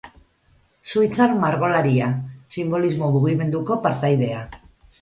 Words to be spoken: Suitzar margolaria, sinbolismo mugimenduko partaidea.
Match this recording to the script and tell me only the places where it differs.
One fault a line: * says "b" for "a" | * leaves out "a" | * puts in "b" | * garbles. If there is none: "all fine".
all fine